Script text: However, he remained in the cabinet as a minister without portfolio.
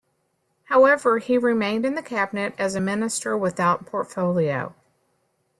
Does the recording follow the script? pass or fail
pass